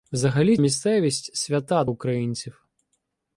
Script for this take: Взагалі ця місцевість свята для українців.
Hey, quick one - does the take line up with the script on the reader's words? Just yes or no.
no